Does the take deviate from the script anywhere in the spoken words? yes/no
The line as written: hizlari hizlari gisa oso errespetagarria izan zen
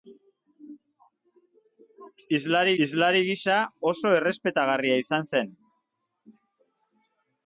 no